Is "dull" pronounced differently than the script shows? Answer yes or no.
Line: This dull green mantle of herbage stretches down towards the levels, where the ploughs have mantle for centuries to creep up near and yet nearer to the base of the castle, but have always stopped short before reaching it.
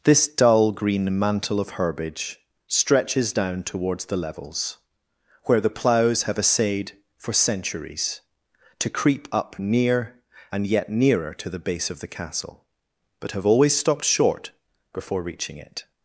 no